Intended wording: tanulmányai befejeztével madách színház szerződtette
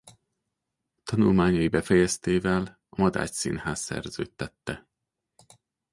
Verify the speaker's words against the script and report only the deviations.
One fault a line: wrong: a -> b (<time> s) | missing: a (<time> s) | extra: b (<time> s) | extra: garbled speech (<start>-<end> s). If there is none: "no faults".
extra: a (2.9 s)